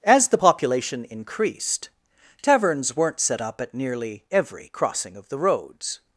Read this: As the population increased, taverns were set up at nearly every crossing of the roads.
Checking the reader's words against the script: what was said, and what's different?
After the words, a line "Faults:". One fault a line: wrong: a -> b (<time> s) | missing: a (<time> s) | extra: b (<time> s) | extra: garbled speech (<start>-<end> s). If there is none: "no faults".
As the population increased, taverns weren't set up at nearly every crossing of the roads.
Faults:
wrong: were -> weren't (3.0 s)